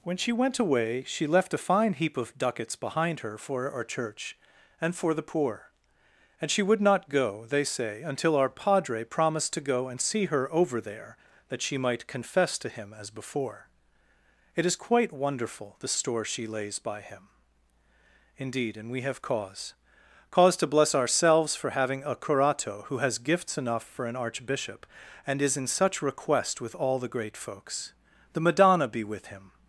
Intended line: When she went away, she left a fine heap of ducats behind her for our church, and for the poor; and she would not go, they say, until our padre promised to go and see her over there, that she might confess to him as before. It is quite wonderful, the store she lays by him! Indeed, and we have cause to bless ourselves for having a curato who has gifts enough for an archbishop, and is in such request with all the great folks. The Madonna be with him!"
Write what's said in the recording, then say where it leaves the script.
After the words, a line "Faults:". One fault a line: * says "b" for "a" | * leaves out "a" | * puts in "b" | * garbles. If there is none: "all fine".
When she went away, she left a fine heap of ducats behind her for our church, and for the poor; and she would not go, they say, until our padre promised to go and see her over there, that she might confess to him as before. It is quite wonderful, the store she lays by him! Indeed, and we have cause cause to bless ourselves for having a curato who has gifts enough for an archbishop, and is in such request with all the great folks. The Madonna be with him!"
Faults:
* puts in "cause"